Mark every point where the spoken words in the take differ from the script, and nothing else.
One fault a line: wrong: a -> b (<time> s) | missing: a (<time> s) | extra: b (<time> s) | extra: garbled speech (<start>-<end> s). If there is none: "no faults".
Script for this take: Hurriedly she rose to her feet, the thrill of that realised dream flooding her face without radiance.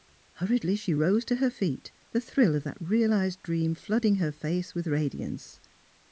wrong: without -> with (4.7 s)